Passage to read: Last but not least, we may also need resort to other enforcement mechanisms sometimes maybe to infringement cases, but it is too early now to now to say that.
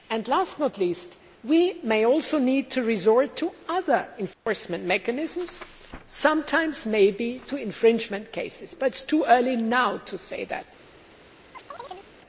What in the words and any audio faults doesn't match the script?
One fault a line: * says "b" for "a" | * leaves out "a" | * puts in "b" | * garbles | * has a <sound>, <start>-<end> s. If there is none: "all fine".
* puts in "to"
* has a dropout, 4.3-4.5 s
* leaves out "now to"
* has a chirp, 11.5-12.1 s